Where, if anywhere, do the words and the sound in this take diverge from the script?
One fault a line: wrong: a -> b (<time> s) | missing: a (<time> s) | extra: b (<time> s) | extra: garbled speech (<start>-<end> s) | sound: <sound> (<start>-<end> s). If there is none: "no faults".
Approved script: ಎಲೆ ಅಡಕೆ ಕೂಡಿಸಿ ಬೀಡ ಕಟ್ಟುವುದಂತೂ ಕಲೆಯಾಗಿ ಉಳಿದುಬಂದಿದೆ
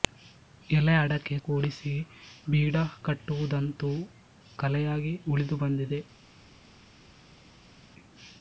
no faults